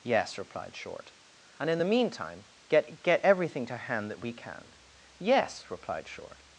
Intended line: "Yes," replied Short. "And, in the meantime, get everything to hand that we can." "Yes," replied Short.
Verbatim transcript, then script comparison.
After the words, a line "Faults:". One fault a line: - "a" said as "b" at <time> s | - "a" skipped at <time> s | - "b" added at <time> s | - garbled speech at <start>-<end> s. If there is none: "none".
"Yes," replied Short. "And, in the meantime, get get everything to hand that we can." "Yes," replied Short.
Faults:
- "get" added at 3.0 s